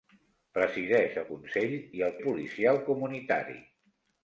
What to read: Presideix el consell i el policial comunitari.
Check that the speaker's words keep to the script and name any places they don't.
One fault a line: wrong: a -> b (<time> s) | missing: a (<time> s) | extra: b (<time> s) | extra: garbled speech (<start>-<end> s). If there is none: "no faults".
no faults